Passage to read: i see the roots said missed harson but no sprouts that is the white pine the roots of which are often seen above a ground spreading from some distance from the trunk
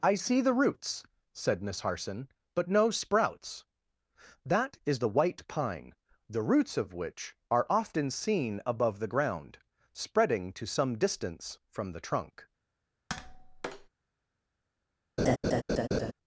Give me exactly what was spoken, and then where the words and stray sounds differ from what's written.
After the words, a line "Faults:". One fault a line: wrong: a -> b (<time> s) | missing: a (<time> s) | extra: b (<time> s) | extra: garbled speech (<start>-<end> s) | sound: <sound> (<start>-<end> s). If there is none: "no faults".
i see the roots said miss harson but no sprouts that is the white pine the roots of which are often seen above the ground spreading to some distance from the trunk
Faults:
wrong: missed -> miss (1.6 s)
wrong: a -> the (9.0 s)
wrong: from -> to (10.5 s)
sound: tap (13.1-13.9 s)
sound: laugh (15.2-16.1 s)